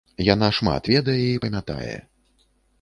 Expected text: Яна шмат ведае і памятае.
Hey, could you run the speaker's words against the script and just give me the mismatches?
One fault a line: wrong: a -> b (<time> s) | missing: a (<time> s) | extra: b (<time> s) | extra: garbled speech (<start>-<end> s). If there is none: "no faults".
no faults